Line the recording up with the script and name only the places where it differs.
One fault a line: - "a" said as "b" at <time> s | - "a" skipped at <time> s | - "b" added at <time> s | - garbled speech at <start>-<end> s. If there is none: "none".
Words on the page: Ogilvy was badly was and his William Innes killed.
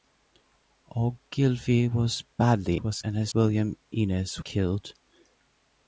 none